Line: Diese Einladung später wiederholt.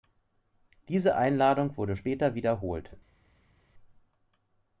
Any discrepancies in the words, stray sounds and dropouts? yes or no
yes